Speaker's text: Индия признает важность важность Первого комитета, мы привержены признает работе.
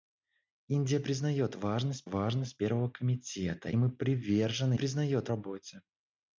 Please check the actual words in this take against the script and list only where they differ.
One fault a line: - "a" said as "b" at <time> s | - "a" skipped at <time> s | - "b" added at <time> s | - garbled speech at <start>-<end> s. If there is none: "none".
none